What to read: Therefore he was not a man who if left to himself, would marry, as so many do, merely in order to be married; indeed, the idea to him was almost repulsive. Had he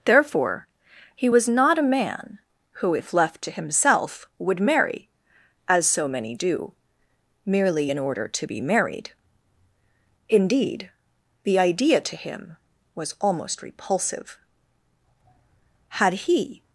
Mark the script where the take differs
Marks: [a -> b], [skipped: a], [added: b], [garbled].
Therefore he was not a man who if left to himself, would marry, as so many do, merely in order to be married; indeed, the idea to him was almost repulsive. Had he